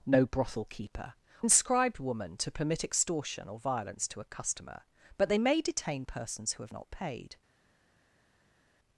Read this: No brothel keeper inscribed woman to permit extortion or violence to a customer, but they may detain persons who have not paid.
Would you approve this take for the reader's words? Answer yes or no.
yes